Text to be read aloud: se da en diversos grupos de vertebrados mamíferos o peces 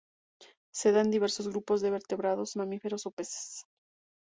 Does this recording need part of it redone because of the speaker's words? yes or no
no